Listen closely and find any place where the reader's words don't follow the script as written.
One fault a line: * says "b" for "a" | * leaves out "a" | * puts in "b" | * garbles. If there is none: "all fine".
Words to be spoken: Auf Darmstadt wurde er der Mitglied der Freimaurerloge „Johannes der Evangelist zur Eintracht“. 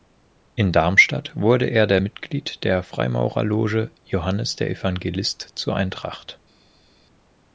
* says "In" for "Auf"